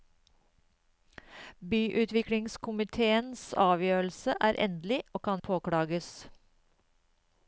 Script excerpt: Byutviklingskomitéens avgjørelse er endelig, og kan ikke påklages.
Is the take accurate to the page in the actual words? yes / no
no